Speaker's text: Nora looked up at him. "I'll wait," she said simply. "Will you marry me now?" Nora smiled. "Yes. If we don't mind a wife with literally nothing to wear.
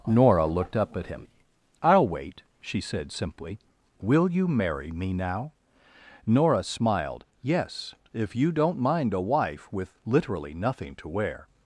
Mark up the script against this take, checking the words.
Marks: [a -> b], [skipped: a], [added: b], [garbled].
Nora looked up at him. "I'll wait," she said simply. "Will you marry me now?" Nora smiled. "Yes. If [we -> you] don't mind a wife with literally nothing to wear.